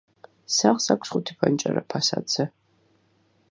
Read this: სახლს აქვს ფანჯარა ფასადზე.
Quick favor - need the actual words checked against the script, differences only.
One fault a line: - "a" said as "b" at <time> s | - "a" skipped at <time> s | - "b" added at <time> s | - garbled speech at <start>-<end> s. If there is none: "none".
- "ხუთი" added at 1.1 s